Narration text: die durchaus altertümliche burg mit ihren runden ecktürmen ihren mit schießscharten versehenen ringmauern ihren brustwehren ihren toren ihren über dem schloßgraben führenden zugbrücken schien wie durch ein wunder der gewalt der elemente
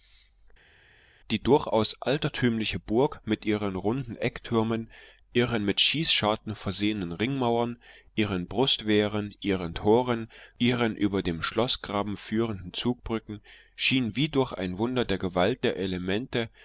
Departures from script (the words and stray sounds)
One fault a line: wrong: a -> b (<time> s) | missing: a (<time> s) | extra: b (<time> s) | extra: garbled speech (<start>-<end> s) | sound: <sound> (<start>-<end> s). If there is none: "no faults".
no faults